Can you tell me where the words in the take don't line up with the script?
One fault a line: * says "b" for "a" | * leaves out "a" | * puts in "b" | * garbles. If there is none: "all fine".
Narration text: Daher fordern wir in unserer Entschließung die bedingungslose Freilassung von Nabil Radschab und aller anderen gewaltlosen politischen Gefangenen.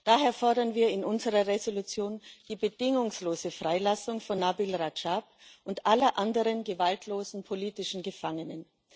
all fine